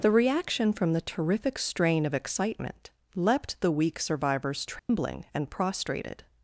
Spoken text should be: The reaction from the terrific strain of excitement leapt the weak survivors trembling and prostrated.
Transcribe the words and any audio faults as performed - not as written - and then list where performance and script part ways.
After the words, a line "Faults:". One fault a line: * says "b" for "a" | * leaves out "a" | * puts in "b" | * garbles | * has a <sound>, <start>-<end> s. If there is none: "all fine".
The reaction from the terrific strain of excitement leapt the weak survivors trembling and prostrated.
Faults:
* has a dropout, 4.8-4.9 s